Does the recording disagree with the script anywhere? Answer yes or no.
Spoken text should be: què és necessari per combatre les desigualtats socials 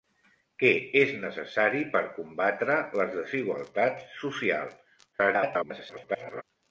yes